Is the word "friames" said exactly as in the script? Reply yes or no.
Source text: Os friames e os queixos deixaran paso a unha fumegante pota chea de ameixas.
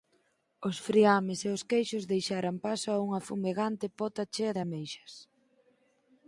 yes